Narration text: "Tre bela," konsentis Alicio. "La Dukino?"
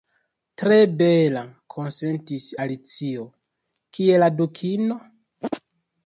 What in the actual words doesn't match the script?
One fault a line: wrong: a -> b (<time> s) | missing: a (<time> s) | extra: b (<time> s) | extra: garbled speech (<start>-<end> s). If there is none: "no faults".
extra: Kie (4.0 s)